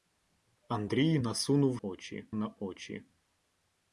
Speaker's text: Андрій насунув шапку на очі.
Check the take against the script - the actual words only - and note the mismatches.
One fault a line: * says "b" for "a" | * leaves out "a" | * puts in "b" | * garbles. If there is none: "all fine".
* says "очі" for "шапку"